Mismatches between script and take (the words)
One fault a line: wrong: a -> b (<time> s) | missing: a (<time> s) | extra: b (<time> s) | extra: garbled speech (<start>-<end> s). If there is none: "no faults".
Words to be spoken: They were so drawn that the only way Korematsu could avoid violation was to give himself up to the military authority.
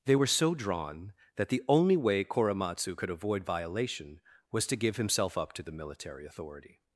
no faults